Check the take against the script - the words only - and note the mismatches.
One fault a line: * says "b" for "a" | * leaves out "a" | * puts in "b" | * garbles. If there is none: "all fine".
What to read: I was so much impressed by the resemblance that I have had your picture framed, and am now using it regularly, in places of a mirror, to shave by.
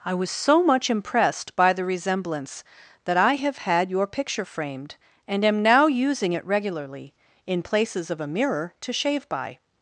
all fine